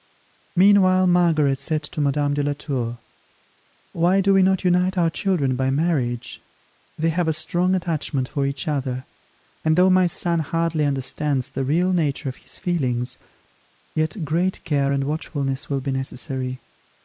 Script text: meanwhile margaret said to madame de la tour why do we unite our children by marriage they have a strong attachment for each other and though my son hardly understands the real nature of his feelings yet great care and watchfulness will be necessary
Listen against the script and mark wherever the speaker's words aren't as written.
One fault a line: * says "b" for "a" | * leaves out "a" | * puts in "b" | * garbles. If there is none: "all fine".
* puts in "not"